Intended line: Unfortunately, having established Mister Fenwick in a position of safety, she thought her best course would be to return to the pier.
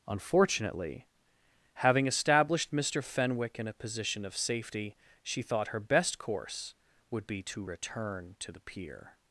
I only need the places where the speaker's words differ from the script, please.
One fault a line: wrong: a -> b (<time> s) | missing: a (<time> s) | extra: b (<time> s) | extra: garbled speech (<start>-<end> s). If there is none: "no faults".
no faults